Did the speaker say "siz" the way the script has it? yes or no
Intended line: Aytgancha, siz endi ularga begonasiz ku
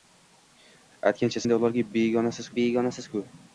no